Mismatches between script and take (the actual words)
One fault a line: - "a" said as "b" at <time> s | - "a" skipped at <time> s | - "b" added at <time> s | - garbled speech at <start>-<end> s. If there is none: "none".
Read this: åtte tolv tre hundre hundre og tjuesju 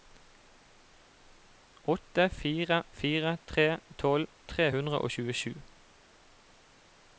- "fire fire tre" added at 2.3 s
- "hundre" skipped at 5.0 s